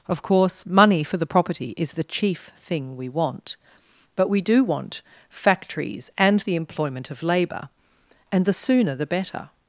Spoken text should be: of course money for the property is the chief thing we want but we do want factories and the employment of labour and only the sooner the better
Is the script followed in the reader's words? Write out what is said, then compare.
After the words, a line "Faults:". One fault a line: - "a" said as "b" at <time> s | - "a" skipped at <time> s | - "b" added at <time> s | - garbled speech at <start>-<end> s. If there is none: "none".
of course money for the property is the chief thing we want but we do want factories and the employment of labour and the sooner the better
Faults:
- "only" skipped at 8.4 s